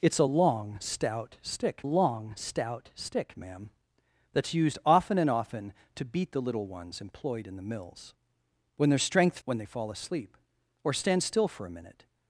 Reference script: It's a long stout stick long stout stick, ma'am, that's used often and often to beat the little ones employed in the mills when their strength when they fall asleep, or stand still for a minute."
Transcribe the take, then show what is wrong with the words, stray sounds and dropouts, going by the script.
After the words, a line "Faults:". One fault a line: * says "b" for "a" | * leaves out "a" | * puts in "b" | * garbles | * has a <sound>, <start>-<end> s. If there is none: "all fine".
It's a long stout stick long stout stick, ma'am, that's used often and often to beat the little ones employed in the mills when their strength when they fall asleep, or stand still for a minute."
Faults:
all fine